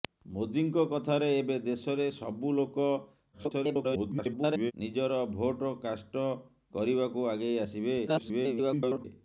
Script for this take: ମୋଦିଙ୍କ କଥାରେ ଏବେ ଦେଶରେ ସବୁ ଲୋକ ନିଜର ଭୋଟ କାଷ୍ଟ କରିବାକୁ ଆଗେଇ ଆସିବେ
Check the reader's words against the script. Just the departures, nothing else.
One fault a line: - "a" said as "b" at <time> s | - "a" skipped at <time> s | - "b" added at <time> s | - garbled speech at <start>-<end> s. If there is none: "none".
- garbled speech at 3.3-4.7 s
- garbled speech at 8.1-9.0 s